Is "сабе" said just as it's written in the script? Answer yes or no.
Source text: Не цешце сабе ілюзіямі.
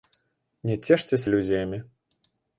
no